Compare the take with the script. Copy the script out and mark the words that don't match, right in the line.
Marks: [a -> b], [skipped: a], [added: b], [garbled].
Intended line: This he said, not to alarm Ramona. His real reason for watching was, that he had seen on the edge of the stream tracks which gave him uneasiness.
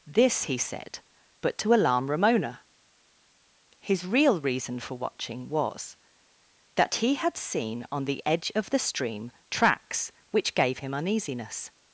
This he said, [not -> but] to alarm Ramona. His real reason for watching was, that he had seen on the edge of the stream tracks which gave him uneasiness.